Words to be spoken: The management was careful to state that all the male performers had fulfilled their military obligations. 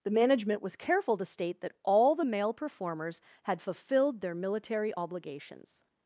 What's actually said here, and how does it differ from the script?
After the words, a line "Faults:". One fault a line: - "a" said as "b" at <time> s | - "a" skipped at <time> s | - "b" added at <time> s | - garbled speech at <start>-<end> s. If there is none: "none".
The management was careful to state that all the male performers had fulfilled their military obligations.
Faults:
none